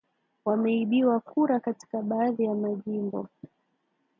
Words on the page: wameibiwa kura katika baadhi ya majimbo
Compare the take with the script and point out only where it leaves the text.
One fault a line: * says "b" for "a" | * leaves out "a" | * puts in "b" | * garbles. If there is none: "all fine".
all fine